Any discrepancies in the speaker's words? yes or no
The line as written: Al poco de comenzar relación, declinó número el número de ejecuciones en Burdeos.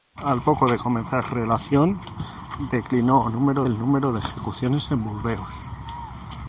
no